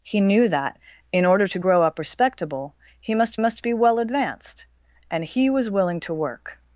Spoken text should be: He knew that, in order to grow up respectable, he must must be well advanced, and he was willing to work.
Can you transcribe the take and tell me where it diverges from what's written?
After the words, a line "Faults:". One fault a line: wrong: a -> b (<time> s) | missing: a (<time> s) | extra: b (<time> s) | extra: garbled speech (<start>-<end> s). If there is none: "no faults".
He knew that, in order to grow up respectable, he must must be well advanced, and he was willing to work.
Faults:
no faults